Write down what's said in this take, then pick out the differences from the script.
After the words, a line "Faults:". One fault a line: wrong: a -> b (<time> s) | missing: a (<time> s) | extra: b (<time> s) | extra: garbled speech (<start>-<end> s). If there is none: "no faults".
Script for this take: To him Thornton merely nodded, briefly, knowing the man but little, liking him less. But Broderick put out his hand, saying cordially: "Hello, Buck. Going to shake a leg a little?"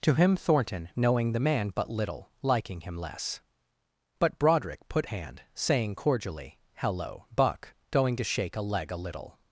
To him Thornton knowing the man but little, liking him less. But Broderick put hand, saying cordially: "Hello, Buck. Going to shake a leg a little?"
Faults:
missing: merely nodded briefly (0.9 s)
missing: out his (5.1 s)